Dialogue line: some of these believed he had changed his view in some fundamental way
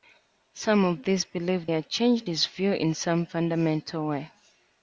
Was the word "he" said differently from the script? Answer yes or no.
yes